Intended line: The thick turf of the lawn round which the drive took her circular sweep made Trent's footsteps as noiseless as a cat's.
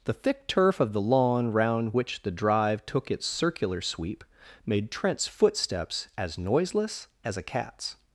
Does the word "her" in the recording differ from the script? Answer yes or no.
yes